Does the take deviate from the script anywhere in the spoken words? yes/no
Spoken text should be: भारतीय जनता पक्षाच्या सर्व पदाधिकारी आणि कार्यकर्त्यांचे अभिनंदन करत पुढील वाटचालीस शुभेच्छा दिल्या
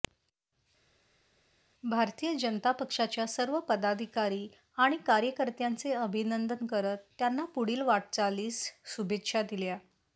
yes